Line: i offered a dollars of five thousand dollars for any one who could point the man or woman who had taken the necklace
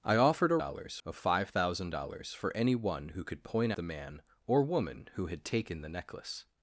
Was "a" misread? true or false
false